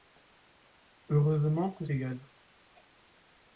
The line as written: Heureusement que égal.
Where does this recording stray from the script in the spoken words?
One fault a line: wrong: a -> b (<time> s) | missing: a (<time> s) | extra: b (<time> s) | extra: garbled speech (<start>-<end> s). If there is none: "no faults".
no faults